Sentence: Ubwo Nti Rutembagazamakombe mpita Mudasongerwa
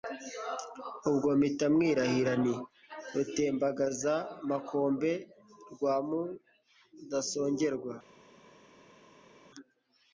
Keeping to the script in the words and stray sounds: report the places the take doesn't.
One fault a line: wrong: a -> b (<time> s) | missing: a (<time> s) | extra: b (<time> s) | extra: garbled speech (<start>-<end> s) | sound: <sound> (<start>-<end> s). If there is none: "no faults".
extra: mpita mwirahira (1.4 s)
wrong: mpita -> rwa (5.7 s)